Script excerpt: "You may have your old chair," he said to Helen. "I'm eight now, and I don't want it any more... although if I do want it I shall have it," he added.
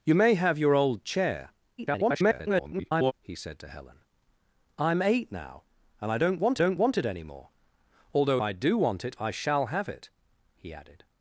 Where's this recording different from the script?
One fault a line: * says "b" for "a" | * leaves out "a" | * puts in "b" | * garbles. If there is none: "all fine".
* garbles
* puts in "don't want"
* leaves out "if"